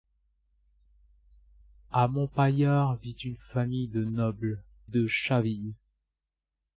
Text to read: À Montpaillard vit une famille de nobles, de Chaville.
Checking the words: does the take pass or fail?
pass